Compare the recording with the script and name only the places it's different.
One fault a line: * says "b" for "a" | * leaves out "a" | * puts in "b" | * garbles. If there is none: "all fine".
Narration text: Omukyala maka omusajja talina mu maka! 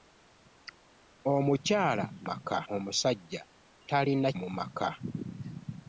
all fine